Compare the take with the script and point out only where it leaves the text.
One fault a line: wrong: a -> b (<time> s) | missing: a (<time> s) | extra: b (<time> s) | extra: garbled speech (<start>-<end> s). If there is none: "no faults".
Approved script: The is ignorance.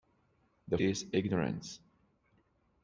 no faults